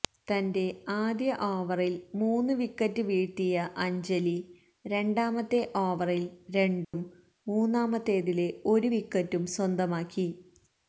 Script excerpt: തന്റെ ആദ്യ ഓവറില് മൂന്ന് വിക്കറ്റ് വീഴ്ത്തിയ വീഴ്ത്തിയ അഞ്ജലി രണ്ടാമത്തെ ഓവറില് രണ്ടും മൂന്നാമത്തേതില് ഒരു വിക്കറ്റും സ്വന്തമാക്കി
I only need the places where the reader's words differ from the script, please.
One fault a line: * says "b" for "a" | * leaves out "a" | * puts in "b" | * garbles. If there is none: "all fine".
* leaves out "വീഴ്ത്തിയ"